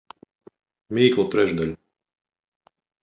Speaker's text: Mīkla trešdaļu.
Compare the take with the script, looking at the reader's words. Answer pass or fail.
pass